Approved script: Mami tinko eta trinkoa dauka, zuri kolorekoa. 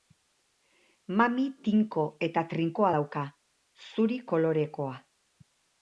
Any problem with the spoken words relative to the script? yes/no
no